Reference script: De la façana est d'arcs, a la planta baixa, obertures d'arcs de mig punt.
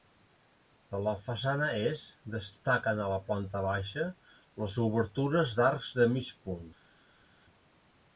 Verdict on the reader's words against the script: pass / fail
fail